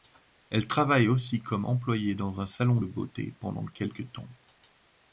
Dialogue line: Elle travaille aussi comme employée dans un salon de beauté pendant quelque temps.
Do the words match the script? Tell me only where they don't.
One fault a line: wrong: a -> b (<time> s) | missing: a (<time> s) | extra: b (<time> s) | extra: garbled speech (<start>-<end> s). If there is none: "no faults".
no faults